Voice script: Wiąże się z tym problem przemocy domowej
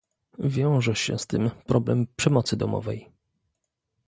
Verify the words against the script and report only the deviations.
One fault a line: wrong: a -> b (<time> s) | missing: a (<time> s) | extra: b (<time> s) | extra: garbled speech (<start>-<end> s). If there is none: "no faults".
no faults